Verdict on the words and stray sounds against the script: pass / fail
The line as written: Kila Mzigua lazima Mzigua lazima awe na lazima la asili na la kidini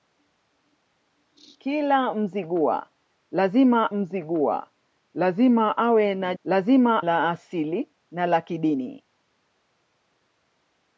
pass